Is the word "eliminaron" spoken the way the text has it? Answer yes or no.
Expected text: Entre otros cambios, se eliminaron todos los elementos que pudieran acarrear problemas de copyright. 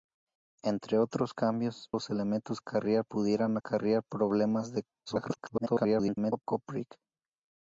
no